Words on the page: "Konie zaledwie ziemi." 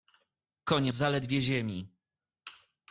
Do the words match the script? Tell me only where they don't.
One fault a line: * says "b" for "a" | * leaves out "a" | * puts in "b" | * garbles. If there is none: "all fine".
all fine